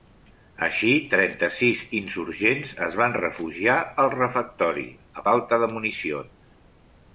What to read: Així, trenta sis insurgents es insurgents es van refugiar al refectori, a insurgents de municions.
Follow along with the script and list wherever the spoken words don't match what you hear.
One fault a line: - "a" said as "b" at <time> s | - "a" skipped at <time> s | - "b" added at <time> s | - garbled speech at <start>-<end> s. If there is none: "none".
- "insurgents es" skipped at 3.0 s
- "insurgents" said as "falta" at 5.3 s